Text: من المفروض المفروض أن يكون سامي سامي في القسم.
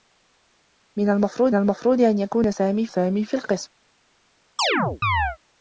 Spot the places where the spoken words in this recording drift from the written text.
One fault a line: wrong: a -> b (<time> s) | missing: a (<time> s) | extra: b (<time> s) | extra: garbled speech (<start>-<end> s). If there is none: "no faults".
no faults